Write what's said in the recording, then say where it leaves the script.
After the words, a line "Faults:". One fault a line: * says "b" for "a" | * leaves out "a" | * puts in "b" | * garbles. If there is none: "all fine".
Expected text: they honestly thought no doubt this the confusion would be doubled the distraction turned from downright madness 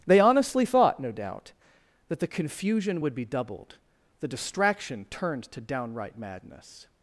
they honestly thought no doubt that the confusion would be doubled the distraction turned to downright madness
Faults:
* says "that" for "this"
* says "to" for "from"